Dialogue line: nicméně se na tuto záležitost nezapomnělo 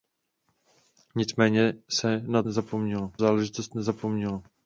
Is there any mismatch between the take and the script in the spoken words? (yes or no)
yes